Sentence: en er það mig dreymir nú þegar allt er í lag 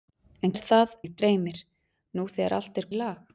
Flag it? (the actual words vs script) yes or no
no